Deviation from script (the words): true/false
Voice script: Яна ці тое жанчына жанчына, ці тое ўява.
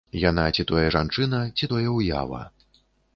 true